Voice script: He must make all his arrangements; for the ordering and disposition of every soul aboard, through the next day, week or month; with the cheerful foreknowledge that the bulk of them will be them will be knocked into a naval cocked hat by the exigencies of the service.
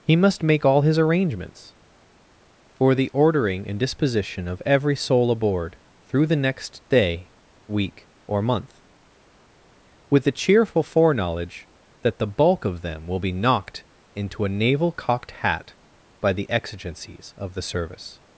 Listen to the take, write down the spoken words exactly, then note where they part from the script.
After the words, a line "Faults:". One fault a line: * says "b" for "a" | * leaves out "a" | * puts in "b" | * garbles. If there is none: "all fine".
He must make all his arrangements; for the ordering and disposition of every soul aboard, through the next day, week or month; with the cheerful foreknowledge that the bulk of them will be knocked into a naval cocked hat by the exigencies of the service.
Faults:
* leaves out "them will be"